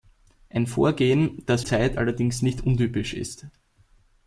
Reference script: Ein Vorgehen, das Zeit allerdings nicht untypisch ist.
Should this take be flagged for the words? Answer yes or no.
no